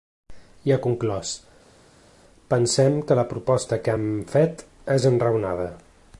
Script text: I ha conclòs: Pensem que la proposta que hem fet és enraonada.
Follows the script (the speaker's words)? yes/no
yes